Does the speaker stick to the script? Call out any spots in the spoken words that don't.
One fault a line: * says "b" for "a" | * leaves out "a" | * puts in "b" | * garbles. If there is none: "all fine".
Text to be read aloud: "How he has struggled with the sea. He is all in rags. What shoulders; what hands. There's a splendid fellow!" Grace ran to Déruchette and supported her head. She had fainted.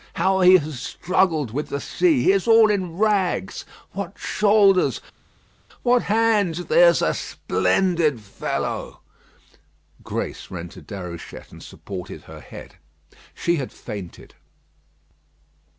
all fine